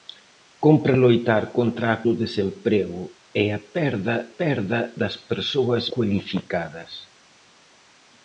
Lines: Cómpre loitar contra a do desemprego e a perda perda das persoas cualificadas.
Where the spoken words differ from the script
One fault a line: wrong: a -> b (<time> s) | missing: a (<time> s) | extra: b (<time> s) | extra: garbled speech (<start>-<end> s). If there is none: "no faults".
no faults